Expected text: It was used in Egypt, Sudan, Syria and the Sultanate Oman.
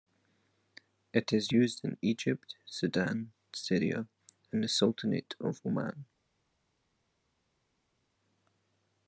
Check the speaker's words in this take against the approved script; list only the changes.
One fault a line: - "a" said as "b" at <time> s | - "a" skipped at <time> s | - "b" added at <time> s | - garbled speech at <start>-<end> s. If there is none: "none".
- "was" said as "is" at 1.3 s
- "of" added at 5.4 s